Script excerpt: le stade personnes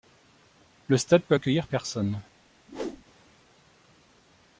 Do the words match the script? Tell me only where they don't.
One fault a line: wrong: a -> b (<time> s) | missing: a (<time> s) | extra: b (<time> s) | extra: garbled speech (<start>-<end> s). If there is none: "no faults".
extra: peut accueillir (1.2 s)